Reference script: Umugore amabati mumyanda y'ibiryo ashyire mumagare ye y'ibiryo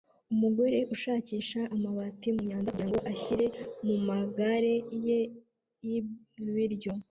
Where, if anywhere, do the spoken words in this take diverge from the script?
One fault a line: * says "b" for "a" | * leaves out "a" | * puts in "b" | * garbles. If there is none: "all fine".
* puts in "ushakisha"
* says "kugirango" for "y'ibiryo"